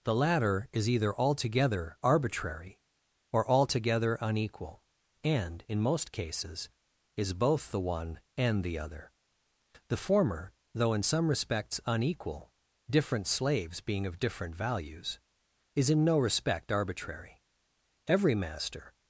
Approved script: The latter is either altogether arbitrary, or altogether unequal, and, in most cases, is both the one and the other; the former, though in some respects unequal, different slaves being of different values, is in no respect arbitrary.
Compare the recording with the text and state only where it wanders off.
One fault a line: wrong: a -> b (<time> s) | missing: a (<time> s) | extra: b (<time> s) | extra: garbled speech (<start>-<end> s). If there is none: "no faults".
extra: Every master (18.1 s)